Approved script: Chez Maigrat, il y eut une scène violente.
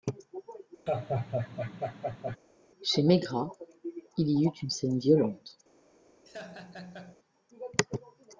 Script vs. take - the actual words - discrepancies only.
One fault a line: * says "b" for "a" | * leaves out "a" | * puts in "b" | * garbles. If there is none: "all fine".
all fine